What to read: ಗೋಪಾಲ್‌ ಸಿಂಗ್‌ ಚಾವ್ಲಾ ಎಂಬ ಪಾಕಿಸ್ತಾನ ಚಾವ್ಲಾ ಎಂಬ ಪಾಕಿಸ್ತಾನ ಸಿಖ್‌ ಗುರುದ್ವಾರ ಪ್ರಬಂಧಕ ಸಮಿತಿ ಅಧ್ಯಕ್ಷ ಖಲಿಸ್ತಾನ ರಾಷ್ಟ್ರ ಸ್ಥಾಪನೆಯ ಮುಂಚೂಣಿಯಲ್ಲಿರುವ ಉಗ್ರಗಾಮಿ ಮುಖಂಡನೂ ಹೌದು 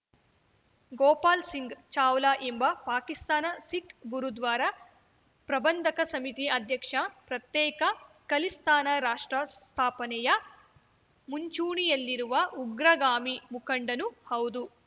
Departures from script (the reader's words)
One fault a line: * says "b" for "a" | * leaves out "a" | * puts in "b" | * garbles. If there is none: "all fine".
* leaves out "ಚಾವ್ಲಾ ಎಂಬ ಪಾಕಿಸ್ತಾನ"
* puts in "ಪ್ರತ್ಯೇಕ"